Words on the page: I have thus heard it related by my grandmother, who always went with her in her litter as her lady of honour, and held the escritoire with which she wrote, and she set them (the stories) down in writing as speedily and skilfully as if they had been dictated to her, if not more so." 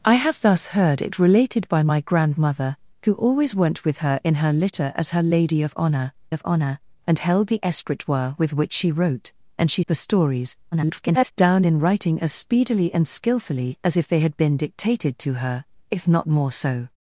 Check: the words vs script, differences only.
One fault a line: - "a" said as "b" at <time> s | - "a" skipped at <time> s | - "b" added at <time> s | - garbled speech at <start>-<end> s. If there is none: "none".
- "of honour" added at 6.3 s
- "set them" skipped at 9.8 s
- garbled speech at 10.7-11.3 s